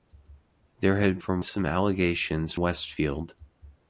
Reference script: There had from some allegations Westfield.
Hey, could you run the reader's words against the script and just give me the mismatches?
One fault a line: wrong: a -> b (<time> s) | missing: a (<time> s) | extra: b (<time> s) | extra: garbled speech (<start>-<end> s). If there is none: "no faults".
no faults